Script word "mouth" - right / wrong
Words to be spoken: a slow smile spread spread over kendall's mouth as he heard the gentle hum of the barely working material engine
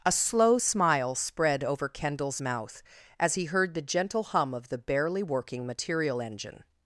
right